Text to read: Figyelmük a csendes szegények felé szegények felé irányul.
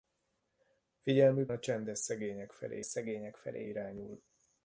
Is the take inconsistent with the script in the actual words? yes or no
no